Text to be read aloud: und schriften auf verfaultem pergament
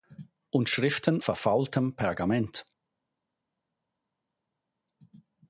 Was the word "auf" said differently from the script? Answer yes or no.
yes